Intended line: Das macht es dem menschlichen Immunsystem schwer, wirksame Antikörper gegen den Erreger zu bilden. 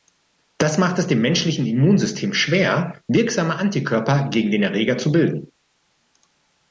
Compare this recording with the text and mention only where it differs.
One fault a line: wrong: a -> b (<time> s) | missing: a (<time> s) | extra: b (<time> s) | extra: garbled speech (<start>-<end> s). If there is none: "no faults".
no faults